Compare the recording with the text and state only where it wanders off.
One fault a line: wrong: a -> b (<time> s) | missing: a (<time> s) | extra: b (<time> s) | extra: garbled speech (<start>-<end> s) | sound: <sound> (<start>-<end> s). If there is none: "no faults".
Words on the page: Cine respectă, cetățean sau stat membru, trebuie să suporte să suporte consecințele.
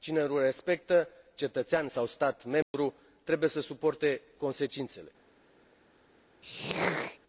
extra: nu (0.2 s)
sound: dropout (2.6-2.7 s)
missing: să suporte (4.2 s)
sound: throat clearing (6.4-7.2 s)